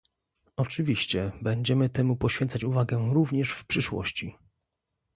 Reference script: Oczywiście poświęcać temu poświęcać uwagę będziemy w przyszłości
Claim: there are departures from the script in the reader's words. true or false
true